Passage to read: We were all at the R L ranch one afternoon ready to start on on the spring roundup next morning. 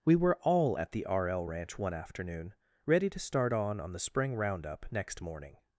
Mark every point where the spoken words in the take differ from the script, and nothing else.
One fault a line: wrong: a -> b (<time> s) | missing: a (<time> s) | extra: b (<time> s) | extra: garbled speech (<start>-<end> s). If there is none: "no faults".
no faults